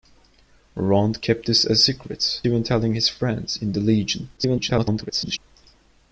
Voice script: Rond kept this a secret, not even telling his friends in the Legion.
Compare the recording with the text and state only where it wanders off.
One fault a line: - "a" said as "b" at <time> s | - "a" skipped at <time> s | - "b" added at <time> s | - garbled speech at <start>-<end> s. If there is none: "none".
- "not" skipped at 2.4 s
- garbled speech at 4.4-5.4 s